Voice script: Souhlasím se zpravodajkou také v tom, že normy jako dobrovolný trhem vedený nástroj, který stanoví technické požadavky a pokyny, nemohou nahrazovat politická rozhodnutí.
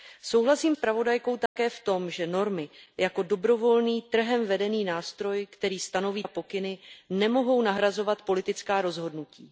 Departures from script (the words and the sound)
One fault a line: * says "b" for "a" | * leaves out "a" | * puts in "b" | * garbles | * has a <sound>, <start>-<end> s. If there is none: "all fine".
* leaves out "se"
* has a dropout, 1.5-1.6 s
* leaves out "technické požadavky"